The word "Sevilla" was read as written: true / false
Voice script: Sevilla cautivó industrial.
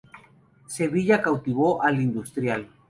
true